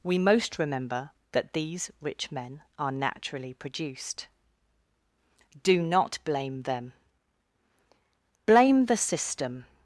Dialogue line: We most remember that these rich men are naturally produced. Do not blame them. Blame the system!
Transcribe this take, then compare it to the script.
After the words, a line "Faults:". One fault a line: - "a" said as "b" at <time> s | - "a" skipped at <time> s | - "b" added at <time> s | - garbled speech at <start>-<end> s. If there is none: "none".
We most remember that these rich men are naturally produced. Do not blame them. Blame the system!
Faults:
none